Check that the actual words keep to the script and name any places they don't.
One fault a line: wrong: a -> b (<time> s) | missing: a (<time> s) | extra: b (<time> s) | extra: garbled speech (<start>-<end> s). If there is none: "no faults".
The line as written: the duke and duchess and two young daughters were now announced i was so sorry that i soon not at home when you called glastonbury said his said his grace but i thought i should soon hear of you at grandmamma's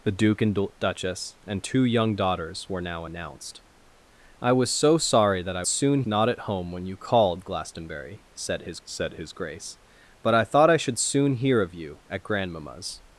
no faults